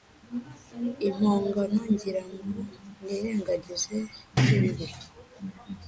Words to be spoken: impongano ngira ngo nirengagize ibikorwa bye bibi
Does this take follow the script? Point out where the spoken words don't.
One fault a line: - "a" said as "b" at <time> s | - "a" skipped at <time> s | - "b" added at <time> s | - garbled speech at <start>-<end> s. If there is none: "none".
- "ibikorwa" skipped at 4.0 s